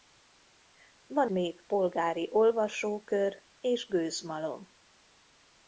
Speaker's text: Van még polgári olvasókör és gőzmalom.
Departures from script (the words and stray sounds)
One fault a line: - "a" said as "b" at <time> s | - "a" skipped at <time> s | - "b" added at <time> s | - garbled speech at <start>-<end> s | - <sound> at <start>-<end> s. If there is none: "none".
none